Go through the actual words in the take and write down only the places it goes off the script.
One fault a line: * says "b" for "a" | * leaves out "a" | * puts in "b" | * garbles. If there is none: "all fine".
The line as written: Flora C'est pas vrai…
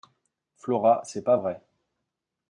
all fine